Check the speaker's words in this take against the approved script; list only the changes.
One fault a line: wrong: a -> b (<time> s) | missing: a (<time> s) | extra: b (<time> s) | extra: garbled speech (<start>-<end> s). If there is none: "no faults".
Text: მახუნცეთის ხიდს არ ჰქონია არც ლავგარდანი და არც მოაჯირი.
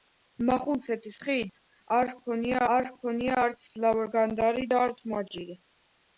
extra: არ ჰქონია (2.7 s)